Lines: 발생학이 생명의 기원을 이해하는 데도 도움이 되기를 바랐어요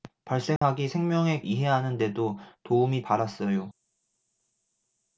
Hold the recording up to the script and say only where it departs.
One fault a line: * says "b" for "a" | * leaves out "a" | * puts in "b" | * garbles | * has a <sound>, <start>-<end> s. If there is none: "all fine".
* has a dropout, 0.6-0.6 s
* leaves out "기원을"
* leaves out "되기를"